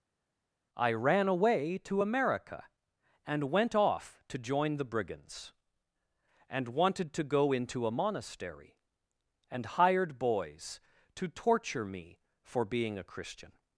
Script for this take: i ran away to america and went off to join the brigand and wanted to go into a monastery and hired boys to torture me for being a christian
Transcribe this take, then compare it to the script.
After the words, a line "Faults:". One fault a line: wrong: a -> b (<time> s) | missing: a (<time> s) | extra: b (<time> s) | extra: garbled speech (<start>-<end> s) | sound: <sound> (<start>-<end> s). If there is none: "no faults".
i ran away to america and went off to join the brigands and wanted to go into a monastery and hired boys to torture me for being a christian
Faults:
wrong: brigand -> brigands (4.8 s)